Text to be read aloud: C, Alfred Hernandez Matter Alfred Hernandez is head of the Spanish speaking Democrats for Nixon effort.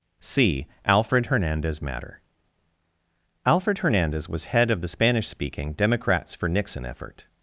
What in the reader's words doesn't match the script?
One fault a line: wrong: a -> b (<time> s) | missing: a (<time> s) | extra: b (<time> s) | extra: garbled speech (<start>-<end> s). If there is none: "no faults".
wrong: is -> was (4.3 s)